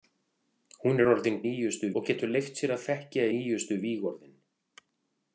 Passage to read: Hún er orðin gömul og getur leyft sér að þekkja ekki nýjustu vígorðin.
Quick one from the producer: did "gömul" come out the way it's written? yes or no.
no